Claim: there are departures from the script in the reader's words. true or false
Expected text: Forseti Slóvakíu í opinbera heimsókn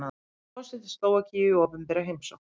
false